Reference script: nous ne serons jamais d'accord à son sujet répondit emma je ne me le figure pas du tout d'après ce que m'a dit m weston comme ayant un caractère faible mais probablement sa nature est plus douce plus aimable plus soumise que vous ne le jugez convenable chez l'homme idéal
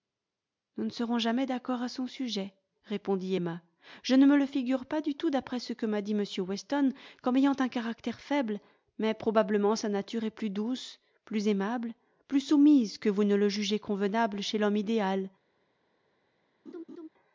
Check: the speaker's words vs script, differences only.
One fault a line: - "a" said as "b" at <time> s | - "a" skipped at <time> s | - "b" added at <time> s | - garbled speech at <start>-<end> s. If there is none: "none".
none